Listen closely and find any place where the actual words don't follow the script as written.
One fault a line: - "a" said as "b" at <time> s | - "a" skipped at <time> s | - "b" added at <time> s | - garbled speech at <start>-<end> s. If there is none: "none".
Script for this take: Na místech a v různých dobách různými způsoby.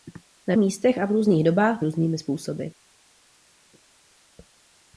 none